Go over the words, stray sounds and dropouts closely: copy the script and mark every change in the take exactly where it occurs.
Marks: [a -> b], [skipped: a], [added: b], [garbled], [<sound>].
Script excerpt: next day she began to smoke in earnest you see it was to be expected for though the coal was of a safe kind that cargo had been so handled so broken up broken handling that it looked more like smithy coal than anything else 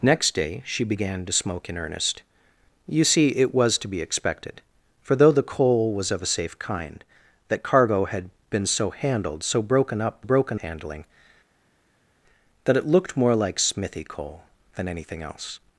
next day she began to smoke in earnest you see it was to be expected for though the coal was of a safe kind that cargo had been so handled so broken up broken handling that it looked more like smithy coal than anything else